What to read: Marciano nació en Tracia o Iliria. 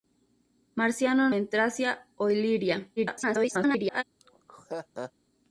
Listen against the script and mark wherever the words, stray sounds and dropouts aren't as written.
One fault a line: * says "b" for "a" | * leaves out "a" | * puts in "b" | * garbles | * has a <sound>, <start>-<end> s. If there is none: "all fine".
* leaves out "nació"
* garbles
* has a laugh, 4.2-5.1 s